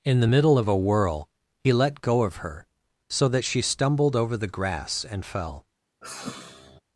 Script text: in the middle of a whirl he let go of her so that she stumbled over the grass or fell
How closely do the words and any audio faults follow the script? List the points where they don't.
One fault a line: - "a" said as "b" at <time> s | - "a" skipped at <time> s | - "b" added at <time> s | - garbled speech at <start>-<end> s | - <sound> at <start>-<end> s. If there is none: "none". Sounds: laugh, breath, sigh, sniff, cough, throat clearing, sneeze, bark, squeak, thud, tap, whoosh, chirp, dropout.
- "or" said as "and" at 5.0 s
- sigh at 6.0-6.8 s